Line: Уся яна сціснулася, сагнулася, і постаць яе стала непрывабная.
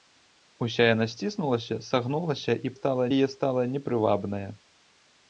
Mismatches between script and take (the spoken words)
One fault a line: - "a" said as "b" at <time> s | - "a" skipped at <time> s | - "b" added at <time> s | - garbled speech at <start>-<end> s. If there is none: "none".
- "постаць" said as "стала" at 2.8 s